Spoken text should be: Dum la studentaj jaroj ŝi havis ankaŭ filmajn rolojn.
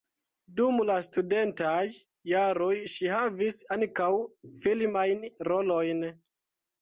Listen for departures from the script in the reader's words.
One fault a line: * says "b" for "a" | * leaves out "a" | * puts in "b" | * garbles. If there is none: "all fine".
all fine